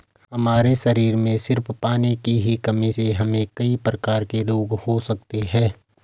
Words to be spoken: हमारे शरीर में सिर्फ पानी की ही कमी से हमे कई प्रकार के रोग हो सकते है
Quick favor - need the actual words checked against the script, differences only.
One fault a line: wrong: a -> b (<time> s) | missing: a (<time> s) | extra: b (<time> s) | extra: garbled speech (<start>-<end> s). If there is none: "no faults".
no faults